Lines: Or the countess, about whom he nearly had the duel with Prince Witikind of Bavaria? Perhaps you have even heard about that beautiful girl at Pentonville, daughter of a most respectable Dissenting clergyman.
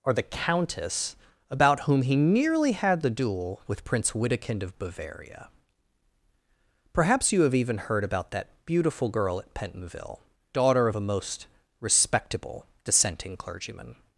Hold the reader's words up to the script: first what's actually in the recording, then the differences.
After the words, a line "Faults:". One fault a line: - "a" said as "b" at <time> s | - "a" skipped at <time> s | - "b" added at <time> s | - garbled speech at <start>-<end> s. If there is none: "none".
Or the countess, about whom he nearly had the duel with Prince Witikind of Bavaria? Perhaps you have even heard about that beautiful girl at Pentonville, daughter of a most respectable Dissenting clergyman.
Faults:
none